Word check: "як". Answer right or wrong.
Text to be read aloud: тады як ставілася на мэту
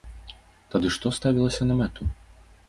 wrong